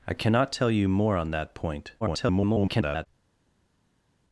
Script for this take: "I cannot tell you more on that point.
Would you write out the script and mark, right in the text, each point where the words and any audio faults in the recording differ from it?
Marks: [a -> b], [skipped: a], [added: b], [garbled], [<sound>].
"I cannot tell you more on that point. [garbled]